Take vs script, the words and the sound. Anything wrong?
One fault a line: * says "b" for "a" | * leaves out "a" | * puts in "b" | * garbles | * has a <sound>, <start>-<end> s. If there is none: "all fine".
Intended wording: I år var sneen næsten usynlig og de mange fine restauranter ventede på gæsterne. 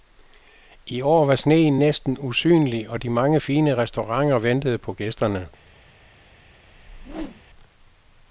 * has a whoosh, 6.7-7.4 s